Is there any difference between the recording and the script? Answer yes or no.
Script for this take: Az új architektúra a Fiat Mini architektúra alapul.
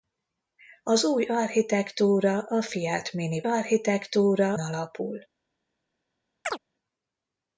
no